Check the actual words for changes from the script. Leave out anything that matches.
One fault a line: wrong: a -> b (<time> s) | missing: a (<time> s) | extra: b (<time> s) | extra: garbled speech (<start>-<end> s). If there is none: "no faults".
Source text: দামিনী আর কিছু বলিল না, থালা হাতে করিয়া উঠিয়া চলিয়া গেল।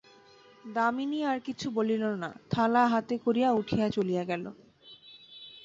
no faults